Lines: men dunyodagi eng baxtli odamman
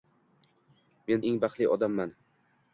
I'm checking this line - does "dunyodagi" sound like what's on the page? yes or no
no